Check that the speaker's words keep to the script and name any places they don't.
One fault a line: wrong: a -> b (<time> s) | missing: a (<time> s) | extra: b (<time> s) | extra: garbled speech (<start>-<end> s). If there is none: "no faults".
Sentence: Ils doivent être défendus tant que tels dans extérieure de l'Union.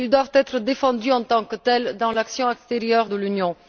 extra: en (1.1 s)
extra: l'action (2.1 s)